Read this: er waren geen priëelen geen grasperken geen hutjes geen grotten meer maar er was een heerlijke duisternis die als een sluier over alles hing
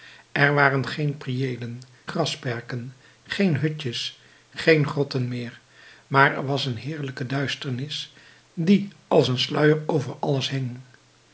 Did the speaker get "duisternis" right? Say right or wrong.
right